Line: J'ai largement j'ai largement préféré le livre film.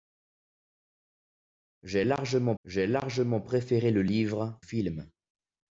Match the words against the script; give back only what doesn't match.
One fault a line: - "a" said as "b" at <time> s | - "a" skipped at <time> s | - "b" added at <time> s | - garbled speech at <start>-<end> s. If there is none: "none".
none